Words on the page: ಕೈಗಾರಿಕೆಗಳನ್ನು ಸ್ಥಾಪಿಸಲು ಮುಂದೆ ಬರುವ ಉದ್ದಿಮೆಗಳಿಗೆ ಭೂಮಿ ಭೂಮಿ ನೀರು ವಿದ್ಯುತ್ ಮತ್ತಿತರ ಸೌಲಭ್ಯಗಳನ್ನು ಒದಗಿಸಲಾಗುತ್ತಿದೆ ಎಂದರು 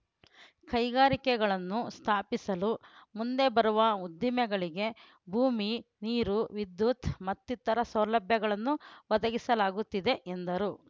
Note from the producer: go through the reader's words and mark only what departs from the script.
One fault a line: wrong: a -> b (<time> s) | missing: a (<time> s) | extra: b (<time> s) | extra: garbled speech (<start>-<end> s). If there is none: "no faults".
missing: ಭೂಮಿ (5.7 s)